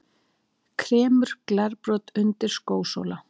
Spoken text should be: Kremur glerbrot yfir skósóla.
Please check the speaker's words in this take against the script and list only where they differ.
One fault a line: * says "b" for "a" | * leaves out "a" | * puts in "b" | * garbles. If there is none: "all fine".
* says "undir" for "yfir"